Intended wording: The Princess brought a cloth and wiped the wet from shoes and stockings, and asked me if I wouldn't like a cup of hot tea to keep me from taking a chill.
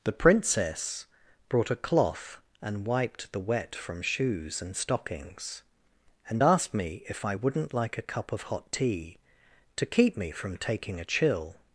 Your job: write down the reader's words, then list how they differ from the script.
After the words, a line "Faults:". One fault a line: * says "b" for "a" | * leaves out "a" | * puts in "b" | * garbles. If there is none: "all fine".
The Princess brought a cloth and wiped the wet from shoes and stockings, and asked me if I wouldn't like a cup of hot tea to keep me from taking a chill.
Faults:
all fine